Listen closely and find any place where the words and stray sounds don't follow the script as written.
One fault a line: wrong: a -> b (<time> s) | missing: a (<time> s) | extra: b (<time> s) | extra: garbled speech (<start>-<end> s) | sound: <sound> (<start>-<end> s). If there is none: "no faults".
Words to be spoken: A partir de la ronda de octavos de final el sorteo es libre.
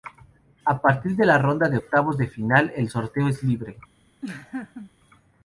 sound: laugh (4.2-4.9 s)